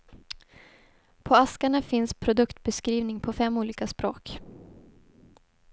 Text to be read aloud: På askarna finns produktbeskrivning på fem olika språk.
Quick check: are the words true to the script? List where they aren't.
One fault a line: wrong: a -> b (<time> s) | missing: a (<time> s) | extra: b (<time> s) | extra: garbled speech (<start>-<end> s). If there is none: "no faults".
no faults